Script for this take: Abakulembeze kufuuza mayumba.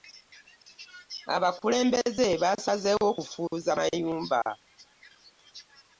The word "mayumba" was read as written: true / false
true